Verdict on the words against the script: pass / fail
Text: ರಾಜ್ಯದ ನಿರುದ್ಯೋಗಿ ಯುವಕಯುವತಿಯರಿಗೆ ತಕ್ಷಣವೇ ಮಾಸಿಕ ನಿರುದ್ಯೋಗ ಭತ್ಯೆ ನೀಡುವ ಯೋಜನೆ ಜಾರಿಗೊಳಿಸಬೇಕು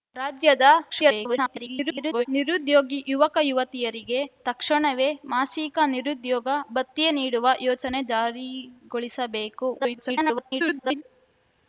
fail